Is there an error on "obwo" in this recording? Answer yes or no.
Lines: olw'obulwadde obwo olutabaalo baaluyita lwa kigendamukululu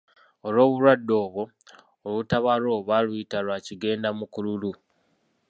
no